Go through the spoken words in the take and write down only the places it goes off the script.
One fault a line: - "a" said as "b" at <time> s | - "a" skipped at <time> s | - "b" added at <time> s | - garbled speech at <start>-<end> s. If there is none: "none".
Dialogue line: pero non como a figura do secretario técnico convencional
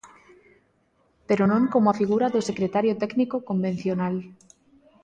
none